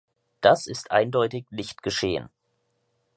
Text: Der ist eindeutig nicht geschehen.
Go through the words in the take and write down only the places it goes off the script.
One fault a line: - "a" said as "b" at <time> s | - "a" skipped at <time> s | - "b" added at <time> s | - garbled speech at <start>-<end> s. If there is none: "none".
- "Der" said as "Das" at 0.4 s